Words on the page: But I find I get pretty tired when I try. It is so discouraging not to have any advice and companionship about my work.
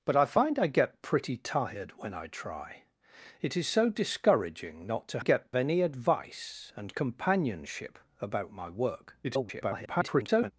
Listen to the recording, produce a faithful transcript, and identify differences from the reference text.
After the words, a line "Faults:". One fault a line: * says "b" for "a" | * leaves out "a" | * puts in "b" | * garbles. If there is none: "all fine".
But I find I get pretty tired when I try. It is so discouraging not to get any advice and companionship about my work. [garbled]
Faults:
* says "get" for "have"
* garbles